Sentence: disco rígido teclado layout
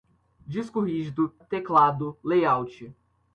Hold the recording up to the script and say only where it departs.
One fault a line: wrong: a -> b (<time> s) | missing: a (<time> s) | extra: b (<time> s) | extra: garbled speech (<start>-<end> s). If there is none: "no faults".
no faults